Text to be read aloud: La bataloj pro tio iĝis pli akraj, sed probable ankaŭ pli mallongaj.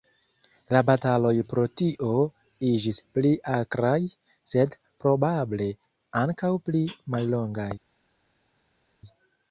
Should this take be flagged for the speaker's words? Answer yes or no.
no